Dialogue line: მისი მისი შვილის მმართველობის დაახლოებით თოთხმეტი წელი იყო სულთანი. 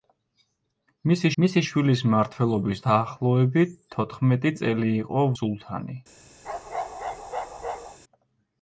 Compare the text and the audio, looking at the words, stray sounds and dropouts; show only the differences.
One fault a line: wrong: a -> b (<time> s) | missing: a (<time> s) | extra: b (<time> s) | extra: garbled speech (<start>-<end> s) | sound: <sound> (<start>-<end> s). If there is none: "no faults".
sound: bark (6.4-8.0 s)